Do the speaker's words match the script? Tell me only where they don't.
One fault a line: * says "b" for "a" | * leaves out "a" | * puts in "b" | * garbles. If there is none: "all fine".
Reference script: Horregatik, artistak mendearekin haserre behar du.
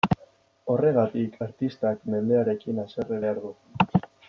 all fine